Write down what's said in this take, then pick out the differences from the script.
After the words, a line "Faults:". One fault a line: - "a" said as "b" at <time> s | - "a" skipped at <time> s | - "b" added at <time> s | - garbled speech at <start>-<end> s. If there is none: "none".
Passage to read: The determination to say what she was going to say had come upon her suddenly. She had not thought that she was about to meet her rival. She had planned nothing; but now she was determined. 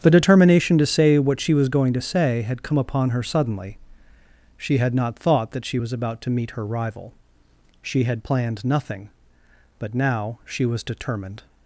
The determination to say what she was going to say had come upon her suddenly. She had not thought that she was about to meet her rival. She had planned nothing; but now she was determined.
Faults:
none